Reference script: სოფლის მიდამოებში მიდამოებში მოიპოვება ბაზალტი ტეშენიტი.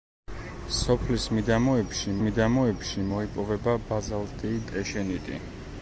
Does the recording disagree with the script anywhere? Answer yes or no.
no